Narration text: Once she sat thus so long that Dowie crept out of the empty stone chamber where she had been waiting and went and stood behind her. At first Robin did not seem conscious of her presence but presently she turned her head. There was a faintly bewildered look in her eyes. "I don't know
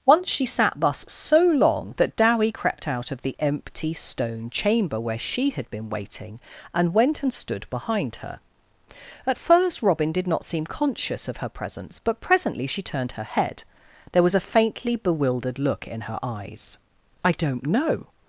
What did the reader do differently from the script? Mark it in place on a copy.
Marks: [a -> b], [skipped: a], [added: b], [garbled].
Once she sat thus so long that Dowie crept out of the empty stone chamber where she had been waiting and went and stood behind her. At first Robin did not seem conscious of her presence but presently she turned her head. There was a faintly bewildered look in her eyes. "I don't know